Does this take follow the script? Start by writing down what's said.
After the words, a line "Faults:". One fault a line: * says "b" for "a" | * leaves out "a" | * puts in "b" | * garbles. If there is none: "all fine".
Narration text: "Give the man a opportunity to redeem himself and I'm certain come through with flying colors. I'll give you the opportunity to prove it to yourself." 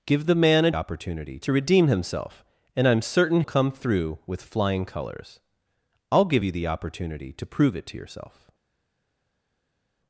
"Give the man a opportunity to redeem himself and I'm certain come through with flying colors. I'll give you the opportunity to prove it to yourself."
Faults:
all fine